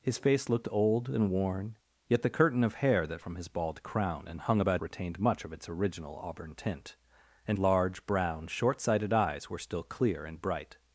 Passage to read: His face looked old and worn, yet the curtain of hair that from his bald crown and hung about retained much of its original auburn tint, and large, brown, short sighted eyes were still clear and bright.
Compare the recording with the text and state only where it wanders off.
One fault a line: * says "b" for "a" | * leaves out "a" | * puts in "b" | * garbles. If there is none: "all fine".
all fine